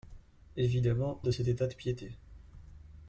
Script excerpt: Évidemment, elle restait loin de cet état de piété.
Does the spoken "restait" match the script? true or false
false